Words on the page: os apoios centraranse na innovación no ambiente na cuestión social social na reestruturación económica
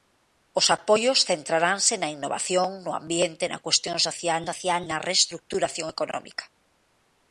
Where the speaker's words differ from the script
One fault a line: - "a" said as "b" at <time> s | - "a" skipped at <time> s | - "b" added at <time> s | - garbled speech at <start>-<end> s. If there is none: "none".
none